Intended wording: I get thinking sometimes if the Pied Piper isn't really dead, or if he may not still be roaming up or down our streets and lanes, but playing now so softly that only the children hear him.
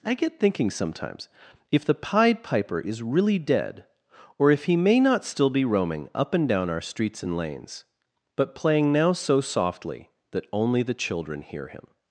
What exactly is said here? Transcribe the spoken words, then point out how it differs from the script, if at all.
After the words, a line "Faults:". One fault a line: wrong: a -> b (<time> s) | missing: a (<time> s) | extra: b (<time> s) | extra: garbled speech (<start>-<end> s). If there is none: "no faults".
I get thinking sometimes if the Pied Piper is really dead, or if he may not still be roaming up and down our streets and lanes, but playing now so softly that only the children hear him.
Faults:
wrong: isn't -> is (2.8 s)
wrong: or -> and (6.3 s)